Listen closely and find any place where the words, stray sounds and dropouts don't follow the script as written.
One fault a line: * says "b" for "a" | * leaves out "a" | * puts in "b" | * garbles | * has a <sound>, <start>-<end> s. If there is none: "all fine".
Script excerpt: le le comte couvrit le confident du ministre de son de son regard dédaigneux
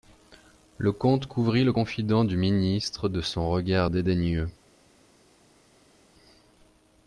* leaves out "le"
* leaves out "de son"